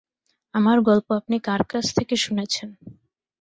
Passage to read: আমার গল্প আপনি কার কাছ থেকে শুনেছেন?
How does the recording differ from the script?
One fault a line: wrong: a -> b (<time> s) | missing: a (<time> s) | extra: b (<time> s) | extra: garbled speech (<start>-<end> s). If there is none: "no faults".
no faults